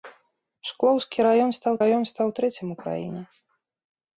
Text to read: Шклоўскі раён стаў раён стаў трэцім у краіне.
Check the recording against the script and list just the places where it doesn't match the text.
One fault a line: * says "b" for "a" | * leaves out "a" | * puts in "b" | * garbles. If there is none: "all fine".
all fine